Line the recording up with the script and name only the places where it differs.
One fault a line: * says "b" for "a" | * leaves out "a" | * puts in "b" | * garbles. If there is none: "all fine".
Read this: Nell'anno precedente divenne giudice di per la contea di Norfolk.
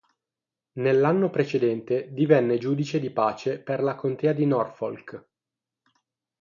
* puts in "pace"